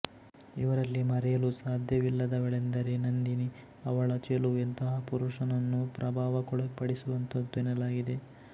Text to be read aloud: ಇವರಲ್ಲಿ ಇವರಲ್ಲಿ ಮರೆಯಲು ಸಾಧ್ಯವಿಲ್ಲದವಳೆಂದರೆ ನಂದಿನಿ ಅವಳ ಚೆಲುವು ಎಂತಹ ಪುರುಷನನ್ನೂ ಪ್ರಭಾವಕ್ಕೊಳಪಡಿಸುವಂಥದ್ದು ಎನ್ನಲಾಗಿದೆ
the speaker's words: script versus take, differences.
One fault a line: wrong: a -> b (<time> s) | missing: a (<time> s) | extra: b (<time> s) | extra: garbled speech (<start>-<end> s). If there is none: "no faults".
missing: ಇವರಲ್ಲಿ (1.0 s)